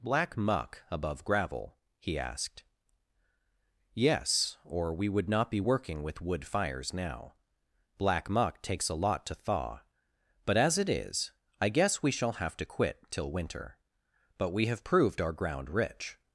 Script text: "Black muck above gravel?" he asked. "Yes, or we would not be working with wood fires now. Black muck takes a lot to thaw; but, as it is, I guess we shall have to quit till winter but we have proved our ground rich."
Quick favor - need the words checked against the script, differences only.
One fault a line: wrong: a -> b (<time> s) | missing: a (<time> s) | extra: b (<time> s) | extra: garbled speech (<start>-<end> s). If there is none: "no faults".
no faults